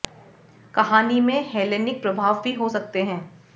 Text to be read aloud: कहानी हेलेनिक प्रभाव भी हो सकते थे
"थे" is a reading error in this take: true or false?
true